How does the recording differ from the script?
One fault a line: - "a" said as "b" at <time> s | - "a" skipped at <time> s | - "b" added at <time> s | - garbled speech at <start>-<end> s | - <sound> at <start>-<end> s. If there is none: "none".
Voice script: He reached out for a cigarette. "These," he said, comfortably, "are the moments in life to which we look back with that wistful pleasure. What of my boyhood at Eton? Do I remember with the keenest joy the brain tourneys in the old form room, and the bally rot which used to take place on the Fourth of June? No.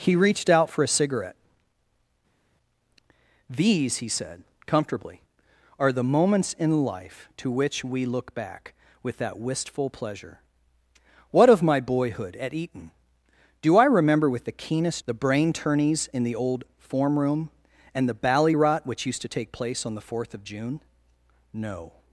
- "joy" skipped at 15.0 s